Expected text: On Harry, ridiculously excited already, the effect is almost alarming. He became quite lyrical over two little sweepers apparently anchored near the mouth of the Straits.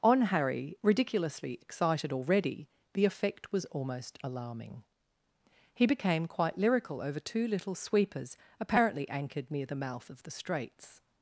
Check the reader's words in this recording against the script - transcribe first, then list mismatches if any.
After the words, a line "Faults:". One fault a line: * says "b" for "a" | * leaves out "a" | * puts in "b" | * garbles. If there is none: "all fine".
On Harry, ridiculously excited already, the effect was almost alarming. He became quite lyrical over two little sweepers apparently anchored near the mouth of the Straits.
Faults:
* says "was" for "is"